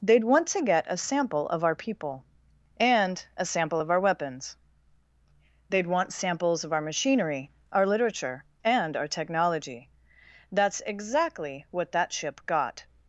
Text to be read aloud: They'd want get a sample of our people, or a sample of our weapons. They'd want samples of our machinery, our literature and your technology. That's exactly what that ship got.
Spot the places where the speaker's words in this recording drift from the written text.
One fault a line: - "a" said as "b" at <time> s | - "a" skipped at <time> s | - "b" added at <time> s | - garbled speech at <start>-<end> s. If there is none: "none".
- "to" added at 0.5 s
- "or" said as "and" at 2.8 s
- "your" said as "our" at 9.0 s